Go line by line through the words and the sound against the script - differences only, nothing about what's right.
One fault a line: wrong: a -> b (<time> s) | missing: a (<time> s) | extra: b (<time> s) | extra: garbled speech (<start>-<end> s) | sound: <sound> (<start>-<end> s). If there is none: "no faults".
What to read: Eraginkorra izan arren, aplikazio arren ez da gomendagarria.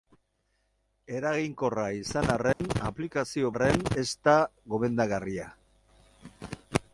sound: dropout (2.5-2.6 s)